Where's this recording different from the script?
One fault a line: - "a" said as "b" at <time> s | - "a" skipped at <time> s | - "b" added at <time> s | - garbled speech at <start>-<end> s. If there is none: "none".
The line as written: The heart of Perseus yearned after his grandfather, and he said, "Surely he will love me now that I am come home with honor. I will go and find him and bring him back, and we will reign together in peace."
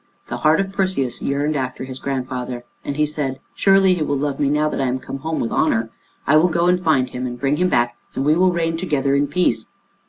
none